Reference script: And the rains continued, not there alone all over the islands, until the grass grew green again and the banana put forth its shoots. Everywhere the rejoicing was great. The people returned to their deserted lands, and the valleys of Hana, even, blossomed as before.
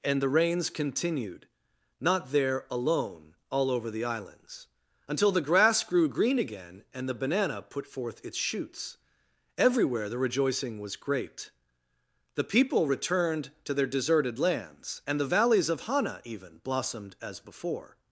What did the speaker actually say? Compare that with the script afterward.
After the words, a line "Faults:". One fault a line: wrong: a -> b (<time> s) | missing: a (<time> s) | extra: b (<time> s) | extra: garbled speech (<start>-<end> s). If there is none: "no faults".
And the rains continued, not there alone all over the islands, until the grass grew green again and the banana put forth its shoots. Everywhere the rejoicing was great. The people returned to their deserted lands, and the valleys of Hana, even, blossomed as before.
Faults:
no faults